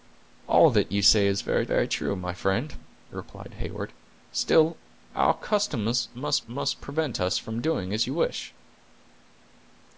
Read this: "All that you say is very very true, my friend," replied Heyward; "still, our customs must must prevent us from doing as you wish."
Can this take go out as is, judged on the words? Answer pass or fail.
pass